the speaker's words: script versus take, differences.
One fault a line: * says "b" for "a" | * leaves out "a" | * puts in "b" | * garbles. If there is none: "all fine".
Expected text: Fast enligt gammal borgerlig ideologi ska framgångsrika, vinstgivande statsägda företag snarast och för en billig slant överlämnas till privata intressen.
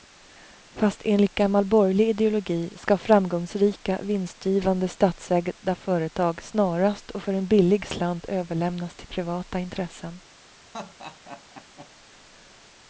all fine